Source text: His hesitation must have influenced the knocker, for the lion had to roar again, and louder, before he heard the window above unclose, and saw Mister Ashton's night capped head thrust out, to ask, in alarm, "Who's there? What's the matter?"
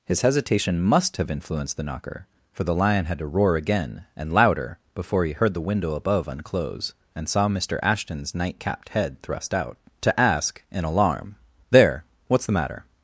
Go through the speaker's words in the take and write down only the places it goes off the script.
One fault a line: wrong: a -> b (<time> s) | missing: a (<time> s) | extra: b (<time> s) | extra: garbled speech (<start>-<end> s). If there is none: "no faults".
missing: Who's (11.3 s)